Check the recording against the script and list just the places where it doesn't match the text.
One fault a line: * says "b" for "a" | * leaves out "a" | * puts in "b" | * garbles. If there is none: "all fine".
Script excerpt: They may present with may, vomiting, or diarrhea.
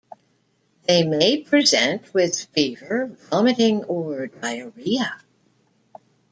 * says "fever" for "may"